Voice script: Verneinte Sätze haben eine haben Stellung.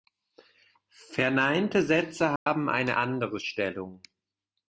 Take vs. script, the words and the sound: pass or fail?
fail